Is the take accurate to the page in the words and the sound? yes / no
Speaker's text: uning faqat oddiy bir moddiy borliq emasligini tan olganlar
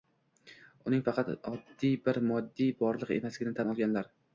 yes